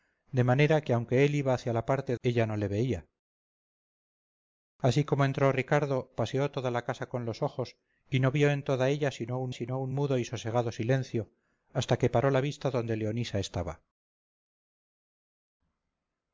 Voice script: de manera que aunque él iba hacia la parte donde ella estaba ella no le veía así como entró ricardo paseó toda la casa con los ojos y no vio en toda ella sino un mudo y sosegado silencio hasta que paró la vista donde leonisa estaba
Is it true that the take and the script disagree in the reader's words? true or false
true